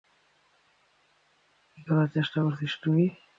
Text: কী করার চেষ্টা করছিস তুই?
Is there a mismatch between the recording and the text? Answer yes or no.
no